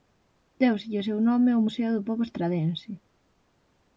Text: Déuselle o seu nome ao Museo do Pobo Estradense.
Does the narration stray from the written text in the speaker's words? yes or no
no